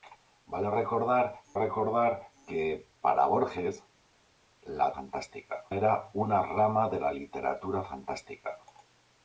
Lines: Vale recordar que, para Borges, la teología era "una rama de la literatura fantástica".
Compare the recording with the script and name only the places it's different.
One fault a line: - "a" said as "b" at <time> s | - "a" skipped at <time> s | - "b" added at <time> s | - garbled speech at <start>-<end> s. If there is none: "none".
- "recordar" added at 1.5 s
- "teología" said as "fantástica" at 4.9 s